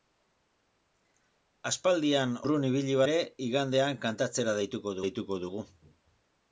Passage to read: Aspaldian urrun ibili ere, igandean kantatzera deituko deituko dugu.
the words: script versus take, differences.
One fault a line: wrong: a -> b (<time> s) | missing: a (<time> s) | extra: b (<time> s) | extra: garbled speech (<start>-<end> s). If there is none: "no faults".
no faults